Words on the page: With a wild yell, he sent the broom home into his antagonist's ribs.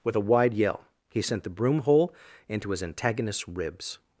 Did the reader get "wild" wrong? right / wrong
wrong